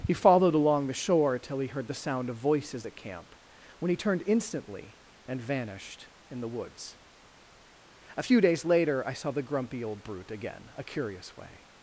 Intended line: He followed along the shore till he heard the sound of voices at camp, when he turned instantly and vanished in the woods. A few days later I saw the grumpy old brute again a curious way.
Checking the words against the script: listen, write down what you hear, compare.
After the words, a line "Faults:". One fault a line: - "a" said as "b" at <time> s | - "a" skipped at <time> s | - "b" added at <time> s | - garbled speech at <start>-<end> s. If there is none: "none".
He followed along the shore till he heard the sound of voices at camp, when he turned instantly and vanished in the woods. A few days later I saw the grumpy old brute again a curious way.
Faults:
none